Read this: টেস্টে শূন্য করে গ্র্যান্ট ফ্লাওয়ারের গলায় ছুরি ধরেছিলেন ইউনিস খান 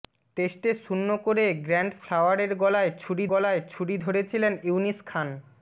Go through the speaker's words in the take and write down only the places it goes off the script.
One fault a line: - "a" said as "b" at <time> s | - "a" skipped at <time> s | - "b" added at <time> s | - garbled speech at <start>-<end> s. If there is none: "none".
- "গলায় ছুরি" added at 3.3 s